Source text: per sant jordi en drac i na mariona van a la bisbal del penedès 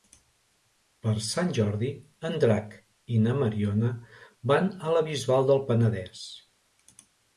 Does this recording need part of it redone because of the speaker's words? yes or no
no